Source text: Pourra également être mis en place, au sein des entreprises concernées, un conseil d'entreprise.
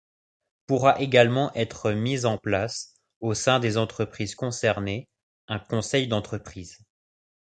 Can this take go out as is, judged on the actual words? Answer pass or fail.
pass